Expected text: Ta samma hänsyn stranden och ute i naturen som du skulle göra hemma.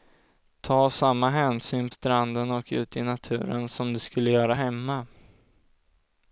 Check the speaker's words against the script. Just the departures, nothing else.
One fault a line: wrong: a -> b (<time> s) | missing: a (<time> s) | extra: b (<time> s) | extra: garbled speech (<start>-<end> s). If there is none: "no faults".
no faults